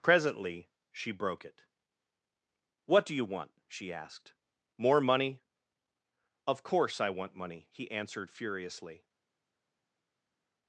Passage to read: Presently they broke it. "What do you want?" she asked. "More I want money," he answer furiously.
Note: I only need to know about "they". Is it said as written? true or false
false